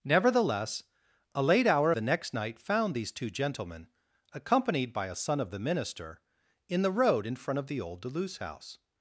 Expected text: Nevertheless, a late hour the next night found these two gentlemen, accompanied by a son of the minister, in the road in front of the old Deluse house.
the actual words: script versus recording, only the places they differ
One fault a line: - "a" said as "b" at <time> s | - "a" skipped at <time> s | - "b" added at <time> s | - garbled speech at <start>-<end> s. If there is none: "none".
none